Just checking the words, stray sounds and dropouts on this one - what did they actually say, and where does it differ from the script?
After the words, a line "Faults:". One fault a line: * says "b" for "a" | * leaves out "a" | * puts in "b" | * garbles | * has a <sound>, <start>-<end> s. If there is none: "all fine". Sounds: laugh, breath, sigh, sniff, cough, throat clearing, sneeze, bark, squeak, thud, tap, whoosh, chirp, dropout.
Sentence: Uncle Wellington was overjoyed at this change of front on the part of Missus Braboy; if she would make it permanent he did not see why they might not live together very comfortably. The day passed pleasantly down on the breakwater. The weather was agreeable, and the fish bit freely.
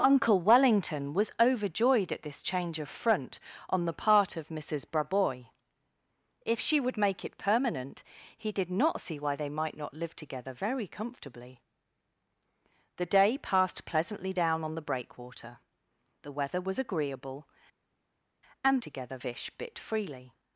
Uncle Wellington was overjoyed at this change of front on the part of Missus Braboy; if she would make it permanent he did not see why they might not live together very comfortably. The day passed pleasantly down on the breakwater. The weather was agreeable, and together fish bit freely.
Faults:
* says "together" for "the"